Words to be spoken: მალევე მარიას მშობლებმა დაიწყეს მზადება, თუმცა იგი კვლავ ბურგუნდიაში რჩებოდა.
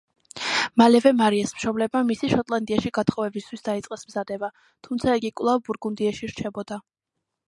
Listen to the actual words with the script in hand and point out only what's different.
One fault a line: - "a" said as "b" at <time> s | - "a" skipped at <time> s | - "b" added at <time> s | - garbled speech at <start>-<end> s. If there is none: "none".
- "მისი შოტლანდიაში გათხოვებისთვის" added at 2.1 s